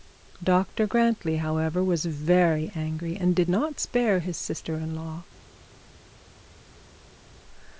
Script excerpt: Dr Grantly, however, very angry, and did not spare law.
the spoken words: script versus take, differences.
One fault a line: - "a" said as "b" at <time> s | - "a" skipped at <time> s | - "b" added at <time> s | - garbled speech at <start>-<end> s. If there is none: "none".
- "was" added at 1.8 s
- "his sister in" added at 4.2 s